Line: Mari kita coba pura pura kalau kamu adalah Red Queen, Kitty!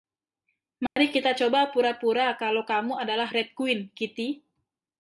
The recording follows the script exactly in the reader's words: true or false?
true